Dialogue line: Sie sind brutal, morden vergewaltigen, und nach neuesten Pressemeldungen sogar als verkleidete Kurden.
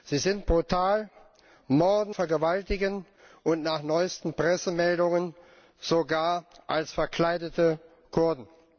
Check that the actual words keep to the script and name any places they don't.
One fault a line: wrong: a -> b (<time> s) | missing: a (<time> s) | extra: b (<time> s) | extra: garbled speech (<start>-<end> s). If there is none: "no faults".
no faults